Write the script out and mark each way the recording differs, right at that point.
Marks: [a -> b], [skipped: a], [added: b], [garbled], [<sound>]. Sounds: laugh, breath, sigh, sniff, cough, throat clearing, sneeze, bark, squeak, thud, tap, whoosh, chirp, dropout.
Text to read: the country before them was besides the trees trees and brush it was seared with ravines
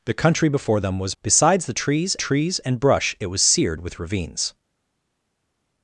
the country before them was besides the trees trees and brush it was seared with ravines